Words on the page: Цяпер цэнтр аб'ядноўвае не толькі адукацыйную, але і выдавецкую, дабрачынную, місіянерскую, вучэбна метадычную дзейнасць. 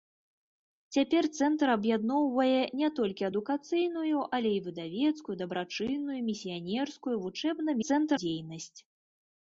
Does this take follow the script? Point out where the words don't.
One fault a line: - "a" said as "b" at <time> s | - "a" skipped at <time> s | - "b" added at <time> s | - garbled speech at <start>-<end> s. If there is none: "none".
- "метадычную" said as "цэнтр" at 7.9 s